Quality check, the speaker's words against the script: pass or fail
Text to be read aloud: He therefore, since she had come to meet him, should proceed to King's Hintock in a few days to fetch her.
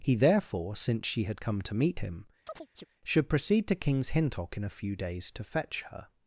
pass